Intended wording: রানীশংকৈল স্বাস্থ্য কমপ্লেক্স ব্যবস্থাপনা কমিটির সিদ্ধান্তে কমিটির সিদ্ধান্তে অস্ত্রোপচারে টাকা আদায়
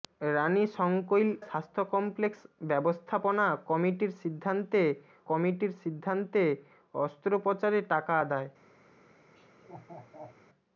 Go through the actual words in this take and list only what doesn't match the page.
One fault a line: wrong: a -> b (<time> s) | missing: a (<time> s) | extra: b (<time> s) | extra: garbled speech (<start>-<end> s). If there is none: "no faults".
no faults